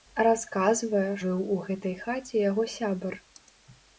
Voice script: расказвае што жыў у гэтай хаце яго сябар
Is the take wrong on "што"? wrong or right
wrong